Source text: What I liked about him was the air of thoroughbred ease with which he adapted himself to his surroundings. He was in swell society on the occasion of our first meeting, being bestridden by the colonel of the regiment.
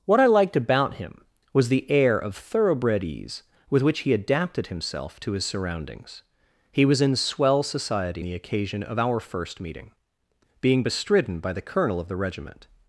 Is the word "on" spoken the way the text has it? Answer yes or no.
no